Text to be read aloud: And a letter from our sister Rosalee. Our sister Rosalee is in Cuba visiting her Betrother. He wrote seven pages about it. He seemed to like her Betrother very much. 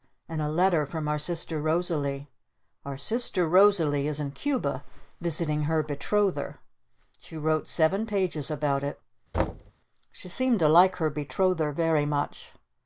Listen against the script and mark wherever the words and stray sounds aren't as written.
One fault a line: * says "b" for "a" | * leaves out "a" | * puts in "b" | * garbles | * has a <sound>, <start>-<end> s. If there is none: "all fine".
* says "She" for "He"
* has a thud, 9.3-9.7 s
* says "She" for "He"